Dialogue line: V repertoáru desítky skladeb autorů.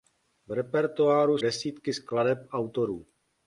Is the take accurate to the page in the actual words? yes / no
yes